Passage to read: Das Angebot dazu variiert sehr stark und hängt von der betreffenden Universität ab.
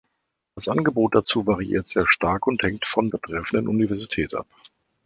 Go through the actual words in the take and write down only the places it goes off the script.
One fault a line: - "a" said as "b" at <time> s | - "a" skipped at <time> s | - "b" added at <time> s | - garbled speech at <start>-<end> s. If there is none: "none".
- "der" skipped at 3.1 s